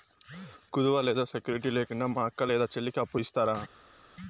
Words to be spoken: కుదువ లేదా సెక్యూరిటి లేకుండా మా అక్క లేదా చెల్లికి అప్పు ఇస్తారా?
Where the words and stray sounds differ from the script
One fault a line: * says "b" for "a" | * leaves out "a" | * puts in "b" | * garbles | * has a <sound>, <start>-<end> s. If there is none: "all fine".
all fine